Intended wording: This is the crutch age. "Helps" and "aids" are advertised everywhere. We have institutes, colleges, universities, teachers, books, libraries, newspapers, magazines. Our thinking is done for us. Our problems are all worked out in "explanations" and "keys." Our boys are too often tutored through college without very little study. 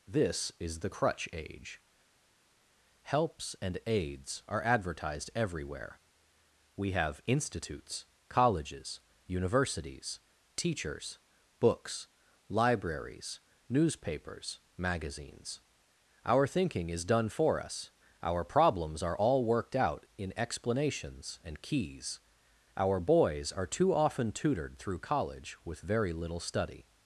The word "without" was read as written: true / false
false